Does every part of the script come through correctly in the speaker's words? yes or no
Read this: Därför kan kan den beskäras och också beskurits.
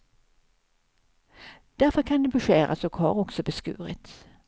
no